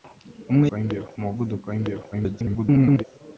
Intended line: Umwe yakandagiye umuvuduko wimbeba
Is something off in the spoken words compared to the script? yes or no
yes